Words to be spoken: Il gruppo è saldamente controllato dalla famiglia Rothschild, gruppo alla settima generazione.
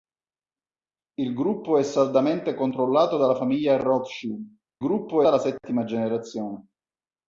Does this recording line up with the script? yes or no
yes